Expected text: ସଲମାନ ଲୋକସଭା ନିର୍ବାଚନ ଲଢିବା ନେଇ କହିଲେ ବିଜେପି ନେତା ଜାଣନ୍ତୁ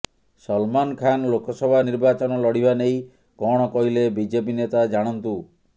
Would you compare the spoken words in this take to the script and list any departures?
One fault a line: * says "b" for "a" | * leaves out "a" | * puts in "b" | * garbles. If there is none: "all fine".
* puts in "ଖାନ"
* puts in "କଣ"